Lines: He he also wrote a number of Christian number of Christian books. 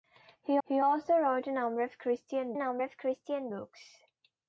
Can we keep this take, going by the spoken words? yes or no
yes